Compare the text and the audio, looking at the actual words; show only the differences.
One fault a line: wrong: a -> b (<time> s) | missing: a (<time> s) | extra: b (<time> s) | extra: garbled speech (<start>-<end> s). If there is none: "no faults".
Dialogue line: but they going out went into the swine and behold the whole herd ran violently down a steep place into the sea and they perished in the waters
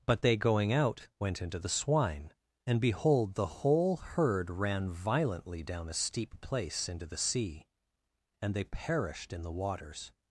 no faults